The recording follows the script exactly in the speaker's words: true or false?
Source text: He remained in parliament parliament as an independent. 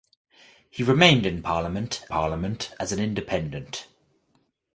true